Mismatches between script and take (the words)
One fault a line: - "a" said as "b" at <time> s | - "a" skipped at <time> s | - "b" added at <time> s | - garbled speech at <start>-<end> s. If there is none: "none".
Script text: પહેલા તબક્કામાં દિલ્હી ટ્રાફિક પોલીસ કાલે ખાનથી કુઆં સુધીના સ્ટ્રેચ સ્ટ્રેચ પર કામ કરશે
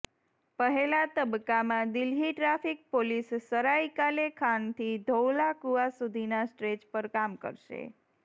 - "સરાય" added at 3.4 s
- "ધૌલા" added at 5.0 s
- "સ્ટ્રેચ" skipped at 6.9 s